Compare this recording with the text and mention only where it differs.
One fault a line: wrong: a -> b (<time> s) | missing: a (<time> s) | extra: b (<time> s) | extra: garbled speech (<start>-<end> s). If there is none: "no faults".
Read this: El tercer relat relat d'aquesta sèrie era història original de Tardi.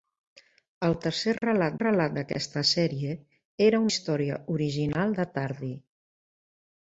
no faults